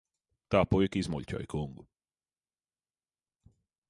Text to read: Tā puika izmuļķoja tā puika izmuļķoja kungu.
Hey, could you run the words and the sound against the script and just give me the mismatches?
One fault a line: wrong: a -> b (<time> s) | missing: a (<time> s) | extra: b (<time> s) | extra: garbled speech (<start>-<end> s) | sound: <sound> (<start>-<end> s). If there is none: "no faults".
missing: tā puika izmuļķoja (1.5 s)